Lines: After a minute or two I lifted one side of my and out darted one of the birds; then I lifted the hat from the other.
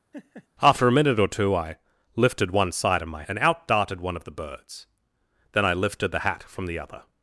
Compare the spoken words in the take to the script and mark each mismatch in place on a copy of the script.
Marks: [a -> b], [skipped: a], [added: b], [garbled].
After a minute or two I lifted one side of my and out darted one of the birds; then I lifted the hat from the other.